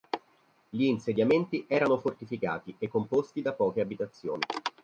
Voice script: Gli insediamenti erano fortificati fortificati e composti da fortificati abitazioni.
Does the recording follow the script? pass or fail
fail